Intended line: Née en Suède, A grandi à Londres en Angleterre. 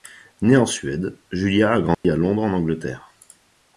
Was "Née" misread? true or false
false